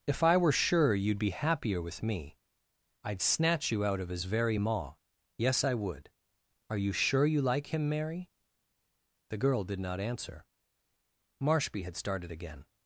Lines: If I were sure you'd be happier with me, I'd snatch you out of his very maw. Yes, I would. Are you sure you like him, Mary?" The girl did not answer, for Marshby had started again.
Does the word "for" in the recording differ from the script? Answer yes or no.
yes